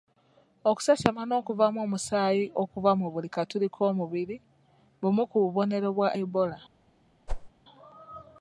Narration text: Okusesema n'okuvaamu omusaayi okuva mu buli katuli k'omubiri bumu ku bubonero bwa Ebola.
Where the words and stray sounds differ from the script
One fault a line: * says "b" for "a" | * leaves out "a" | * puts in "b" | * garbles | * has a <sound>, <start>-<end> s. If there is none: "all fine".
* has a whoosh, 7.3-7.5 s